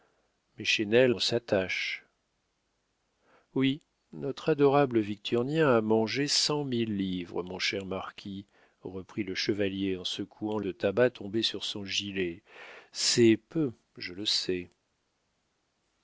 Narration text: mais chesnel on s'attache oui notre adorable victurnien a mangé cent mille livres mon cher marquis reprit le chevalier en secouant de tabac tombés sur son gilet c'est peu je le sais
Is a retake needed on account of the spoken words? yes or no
no